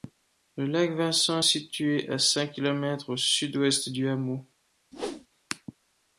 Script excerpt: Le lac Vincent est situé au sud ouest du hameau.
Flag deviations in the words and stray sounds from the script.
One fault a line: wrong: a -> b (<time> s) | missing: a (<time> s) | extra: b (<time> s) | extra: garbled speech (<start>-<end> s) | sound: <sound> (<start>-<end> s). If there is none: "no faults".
extra: à cinq kilomètres (2.1 s)
sound: whoosh (4.9-5.3 s)